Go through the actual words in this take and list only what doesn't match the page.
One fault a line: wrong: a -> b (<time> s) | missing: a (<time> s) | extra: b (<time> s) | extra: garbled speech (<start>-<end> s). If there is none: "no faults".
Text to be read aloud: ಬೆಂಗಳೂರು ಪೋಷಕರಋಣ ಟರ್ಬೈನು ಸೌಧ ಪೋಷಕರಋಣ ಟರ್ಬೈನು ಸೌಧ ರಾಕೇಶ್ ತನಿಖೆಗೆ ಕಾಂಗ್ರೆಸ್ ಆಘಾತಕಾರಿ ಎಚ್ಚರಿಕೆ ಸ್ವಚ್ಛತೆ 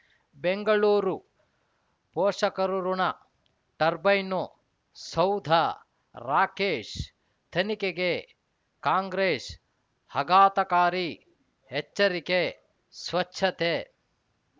missing: ಪೋಷಕರಋಣ ಟರ್ಬೈನು ಸೌಧ (5.5 s)